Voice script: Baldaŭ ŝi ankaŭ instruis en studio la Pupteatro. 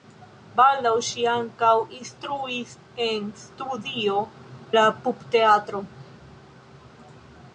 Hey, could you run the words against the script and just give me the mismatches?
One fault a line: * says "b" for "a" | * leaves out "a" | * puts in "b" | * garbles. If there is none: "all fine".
all fine